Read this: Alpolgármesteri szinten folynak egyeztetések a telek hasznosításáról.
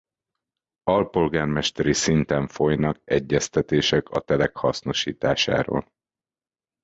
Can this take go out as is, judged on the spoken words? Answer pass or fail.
pass